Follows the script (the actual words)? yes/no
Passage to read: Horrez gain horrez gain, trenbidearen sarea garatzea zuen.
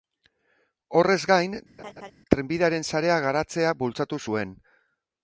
no